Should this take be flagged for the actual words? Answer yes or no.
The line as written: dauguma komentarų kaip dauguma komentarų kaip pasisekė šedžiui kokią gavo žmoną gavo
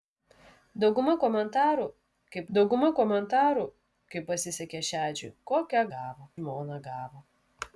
no